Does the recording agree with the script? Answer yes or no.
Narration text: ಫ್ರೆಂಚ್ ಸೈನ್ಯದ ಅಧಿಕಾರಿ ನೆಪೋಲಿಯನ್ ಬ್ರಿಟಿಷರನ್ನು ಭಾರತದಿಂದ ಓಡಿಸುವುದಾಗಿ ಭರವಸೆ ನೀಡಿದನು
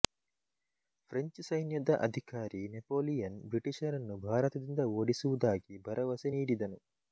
yes